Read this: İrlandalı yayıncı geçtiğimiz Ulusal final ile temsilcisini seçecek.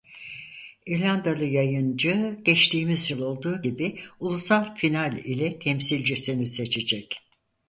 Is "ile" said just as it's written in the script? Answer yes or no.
yes